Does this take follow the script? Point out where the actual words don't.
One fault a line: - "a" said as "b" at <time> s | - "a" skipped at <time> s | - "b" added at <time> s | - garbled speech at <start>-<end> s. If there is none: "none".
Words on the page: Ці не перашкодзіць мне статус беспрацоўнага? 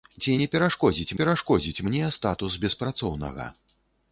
- "перашкодзіць" added at 1.2 s